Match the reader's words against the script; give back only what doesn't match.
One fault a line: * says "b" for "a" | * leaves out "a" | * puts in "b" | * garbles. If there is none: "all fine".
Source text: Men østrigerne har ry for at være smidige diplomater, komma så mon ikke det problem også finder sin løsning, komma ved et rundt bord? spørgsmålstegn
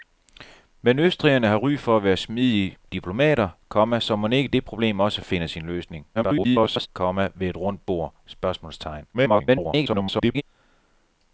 * garbles
* garbles